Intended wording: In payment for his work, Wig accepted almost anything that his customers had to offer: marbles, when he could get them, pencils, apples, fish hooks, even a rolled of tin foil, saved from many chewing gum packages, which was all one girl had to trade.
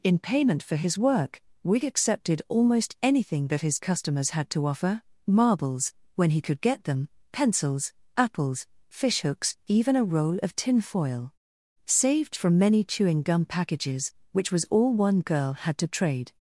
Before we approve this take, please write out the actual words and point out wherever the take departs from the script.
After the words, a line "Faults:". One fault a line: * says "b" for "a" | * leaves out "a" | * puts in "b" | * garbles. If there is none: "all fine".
In payment for his work, Wig accepted almost anything that his customers had to offer: marbles, when he could get them, pencils, apples, fish hooks, even a roll of tin foil, saved from many chewing gum packages, which was all one girl had to trade.
Faults:
* says "roll" for "rolled"